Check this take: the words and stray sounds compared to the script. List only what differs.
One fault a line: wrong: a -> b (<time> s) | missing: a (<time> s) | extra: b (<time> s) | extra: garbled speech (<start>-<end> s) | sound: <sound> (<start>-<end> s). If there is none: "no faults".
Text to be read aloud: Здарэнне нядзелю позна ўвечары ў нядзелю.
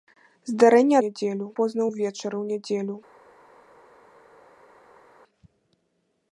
no faults